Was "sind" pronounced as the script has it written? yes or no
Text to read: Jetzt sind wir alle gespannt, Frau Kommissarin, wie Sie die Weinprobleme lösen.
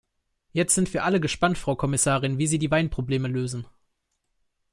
yes